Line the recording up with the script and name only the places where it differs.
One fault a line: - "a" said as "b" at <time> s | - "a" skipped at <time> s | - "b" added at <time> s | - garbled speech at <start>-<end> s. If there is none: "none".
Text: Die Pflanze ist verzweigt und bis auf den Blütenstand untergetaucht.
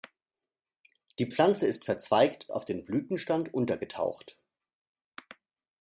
- "und bis" skipped at 2.5 s